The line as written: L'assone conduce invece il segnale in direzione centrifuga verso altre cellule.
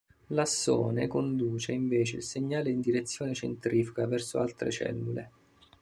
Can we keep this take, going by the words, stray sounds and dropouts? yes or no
yes